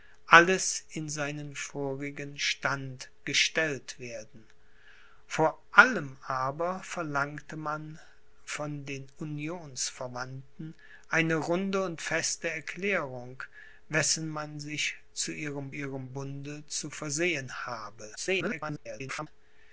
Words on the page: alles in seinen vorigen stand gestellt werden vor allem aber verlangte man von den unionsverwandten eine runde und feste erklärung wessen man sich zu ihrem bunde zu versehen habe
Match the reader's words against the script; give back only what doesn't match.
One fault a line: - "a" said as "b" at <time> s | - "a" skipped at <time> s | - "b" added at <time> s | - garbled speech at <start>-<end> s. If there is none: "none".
- "ihrem" added at 15.7 s
- garbled speech at 18.2-19.3 s